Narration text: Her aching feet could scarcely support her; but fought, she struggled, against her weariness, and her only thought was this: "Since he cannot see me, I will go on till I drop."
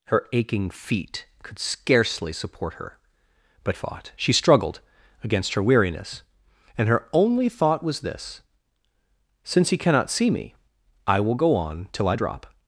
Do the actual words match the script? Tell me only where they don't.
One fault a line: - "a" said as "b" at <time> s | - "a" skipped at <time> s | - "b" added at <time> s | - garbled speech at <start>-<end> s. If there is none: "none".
none